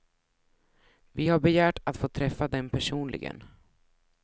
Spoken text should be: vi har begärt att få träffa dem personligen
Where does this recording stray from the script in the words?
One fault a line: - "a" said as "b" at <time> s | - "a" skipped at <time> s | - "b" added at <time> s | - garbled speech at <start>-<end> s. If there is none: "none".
none